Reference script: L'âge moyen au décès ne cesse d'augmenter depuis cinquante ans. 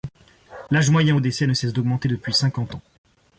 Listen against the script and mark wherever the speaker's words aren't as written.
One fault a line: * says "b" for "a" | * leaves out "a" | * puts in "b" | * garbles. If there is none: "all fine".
all fine